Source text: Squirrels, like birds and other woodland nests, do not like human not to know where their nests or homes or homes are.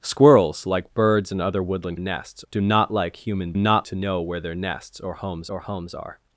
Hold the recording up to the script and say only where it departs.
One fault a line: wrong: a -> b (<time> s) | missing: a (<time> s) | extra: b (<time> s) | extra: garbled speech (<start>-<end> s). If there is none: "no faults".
no faults